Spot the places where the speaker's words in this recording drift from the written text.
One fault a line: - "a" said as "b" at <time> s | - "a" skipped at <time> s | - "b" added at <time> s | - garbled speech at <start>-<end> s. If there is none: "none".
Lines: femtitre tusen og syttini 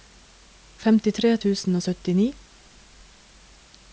none